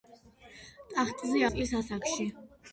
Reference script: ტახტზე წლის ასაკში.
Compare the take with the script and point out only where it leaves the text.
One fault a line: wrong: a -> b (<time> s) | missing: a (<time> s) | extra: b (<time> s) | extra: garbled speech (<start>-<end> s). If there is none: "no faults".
no faults